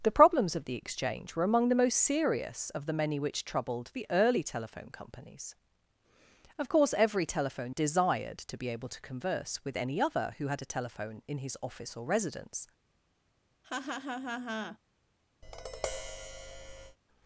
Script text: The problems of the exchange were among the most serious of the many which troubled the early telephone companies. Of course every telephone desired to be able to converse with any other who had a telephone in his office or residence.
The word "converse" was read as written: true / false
true